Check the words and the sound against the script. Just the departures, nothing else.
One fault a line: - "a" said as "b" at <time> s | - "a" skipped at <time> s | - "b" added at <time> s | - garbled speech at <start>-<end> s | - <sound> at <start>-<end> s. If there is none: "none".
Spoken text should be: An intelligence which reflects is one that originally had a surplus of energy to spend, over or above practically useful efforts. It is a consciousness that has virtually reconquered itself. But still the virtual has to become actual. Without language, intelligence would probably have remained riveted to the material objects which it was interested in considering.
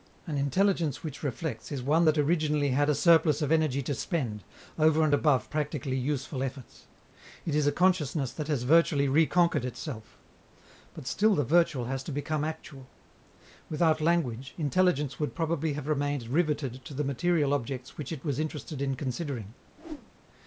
- "or" said as "and" at 5.0 s
- whoosh at 19.8-20.1 s